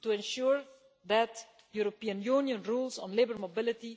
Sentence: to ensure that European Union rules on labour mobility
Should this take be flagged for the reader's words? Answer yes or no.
no